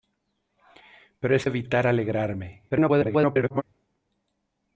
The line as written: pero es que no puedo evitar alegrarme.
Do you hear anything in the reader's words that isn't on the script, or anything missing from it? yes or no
yes